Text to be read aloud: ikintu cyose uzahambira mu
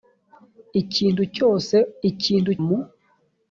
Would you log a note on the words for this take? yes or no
yes